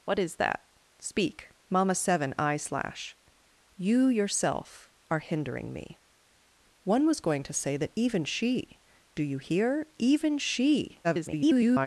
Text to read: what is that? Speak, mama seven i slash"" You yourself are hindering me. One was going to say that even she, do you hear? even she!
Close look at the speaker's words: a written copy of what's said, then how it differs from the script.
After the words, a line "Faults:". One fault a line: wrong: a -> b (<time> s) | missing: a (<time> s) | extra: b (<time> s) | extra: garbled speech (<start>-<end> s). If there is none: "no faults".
what is that? Speak, mama seven i slash"" You yourself are hindering me. One was going to say that even she, do you hear? even she! [garbled]
Faults:
extra: garbled speech (11.0-11.9 s)